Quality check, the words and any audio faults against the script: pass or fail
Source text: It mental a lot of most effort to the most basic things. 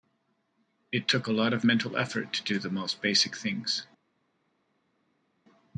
fail